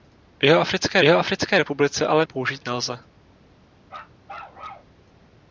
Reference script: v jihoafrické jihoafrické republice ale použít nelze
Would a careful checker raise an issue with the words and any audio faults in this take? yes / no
yes